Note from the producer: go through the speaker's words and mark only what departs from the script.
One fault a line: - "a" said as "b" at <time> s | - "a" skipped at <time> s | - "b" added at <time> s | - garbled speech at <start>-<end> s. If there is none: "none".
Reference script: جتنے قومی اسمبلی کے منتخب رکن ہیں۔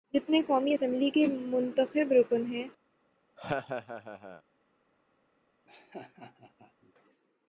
none